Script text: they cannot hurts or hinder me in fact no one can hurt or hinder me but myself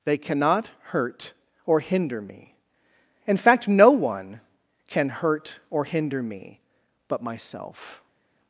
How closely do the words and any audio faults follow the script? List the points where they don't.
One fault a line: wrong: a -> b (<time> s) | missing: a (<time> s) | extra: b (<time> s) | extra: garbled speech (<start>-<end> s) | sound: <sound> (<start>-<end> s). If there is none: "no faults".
wrong: hurts -> hurt (0.8 s)